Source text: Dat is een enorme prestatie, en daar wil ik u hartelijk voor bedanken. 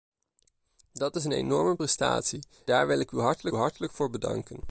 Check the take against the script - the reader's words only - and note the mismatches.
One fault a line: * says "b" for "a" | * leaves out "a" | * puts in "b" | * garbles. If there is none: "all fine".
* leaves out "en"
* puts in "hartelijk"